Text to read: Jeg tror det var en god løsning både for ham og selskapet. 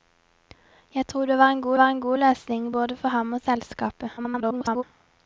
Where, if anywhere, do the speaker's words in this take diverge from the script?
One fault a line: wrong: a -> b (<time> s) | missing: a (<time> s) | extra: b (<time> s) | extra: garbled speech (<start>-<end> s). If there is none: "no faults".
extra: var en god (1.8 s)
extra: garbled speech (4.2-4.8 s)